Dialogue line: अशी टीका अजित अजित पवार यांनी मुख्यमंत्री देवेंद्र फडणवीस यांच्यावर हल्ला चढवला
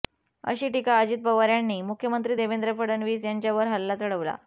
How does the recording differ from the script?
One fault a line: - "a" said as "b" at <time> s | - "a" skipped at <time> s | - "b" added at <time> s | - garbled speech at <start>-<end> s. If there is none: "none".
- "अजित" skipped at 1.2 s